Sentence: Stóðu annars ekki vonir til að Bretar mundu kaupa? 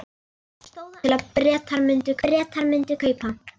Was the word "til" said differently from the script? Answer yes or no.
yes